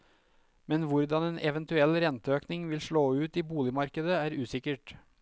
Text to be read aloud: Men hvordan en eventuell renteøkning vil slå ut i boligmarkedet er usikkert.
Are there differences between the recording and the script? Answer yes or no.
no